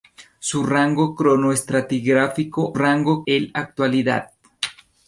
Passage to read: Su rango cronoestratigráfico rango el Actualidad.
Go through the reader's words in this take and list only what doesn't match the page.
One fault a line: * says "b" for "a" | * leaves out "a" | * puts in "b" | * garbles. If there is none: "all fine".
all fine